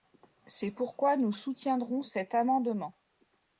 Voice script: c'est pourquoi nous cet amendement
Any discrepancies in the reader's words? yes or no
yes